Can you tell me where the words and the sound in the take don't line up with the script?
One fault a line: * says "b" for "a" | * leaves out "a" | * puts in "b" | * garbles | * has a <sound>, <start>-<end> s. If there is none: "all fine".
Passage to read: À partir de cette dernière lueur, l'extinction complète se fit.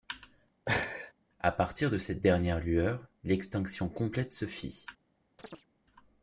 * has a laugh, 0.7-1.1 s
* has a chirp, 5.4-5.7 s